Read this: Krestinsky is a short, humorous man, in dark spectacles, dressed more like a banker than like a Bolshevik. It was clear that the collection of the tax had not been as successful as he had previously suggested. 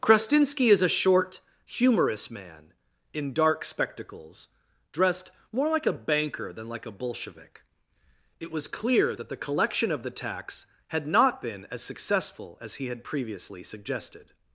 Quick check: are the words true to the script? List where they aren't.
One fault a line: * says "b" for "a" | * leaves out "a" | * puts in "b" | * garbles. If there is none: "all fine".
all fine